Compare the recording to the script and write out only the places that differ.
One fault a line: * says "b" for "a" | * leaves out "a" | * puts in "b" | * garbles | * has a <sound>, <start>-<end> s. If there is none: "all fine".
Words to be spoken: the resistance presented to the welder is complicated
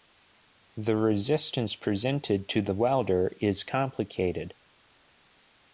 all fine